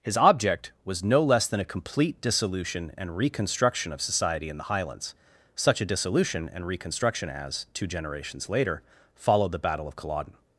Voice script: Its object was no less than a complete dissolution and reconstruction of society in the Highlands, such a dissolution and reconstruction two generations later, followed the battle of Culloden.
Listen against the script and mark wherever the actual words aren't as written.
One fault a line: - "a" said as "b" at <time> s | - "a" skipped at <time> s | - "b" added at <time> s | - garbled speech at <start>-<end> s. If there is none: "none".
- "Its" said as "His" at 0.0 s
- "as" added at 7.3 s